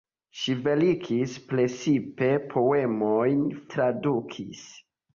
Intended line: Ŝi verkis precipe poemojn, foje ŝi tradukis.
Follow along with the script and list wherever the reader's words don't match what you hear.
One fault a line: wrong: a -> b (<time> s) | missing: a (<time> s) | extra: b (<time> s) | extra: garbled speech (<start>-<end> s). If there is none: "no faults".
missing: foje ŝi (3.5 s)